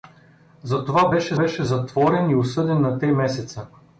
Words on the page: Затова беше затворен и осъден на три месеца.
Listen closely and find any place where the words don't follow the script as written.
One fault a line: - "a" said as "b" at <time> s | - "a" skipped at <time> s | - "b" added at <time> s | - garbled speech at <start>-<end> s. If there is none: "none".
- "беше" added at 1.4 s